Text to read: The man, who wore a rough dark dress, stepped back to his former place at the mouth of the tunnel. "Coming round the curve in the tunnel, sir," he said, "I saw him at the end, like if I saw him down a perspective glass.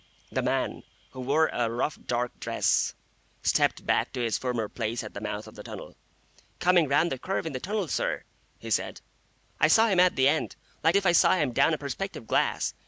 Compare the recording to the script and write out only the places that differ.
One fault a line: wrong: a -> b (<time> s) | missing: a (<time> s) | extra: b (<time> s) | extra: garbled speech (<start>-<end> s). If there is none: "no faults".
no faults